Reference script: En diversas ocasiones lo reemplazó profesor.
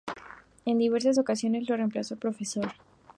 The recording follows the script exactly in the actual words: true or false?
true